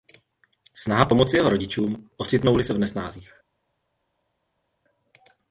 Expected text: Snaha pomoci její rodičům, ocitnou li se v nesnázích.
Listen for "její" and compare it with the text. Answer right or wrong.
wrong